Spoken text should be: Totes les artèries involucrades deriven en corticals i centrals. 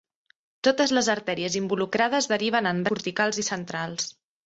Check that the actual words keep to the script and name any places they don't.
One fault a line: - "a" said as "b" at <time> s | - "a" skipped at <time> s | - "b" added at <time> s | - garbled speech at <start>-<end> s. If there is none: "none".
none